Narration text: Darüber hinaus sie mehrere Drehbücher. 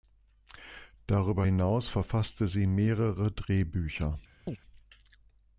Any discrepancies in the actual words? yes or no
yes